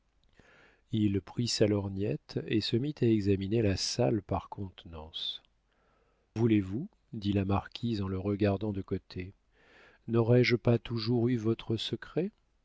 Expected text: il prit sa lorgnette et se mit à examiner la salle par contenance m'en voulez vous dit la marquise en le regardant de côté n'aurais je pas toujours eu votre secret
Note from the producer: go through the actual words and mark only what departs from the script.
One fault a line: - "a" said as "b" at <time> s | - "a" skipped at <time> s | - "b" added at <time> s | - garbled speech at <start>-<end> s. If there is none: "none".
- "m'en" skipped at 5.4 s